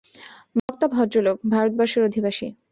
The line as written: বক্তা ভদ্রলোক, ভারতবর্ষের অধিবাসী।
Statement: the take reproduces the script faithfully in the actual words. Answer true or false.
true